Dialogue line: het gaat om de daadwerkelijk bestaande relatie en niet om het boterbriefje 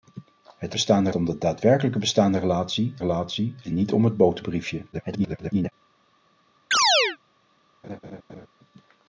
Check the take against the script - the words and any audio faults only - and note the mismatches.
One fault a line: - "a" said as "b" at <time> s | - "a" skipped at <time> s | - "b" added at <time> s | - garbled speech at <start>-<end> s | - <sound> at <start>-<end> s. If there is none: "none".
- "gaat" said as "bestaande" at 0.7 s
- "relatie" added at 3.0 s
- garbled speech at 4.9-5.7 s
- chirp at 6.7-7.2 s
- laugh at 7.8-8.5 s